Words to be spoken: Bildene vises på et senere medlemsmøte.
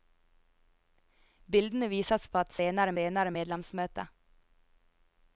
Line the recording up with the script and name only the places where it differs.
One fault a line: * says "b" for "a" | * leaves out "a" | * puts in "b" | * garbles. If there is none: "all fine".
* puts in "senere"